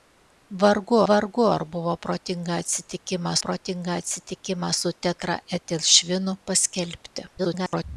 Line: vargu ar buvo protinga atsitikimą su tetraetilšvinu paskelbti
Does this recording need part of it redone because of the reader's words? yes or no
yes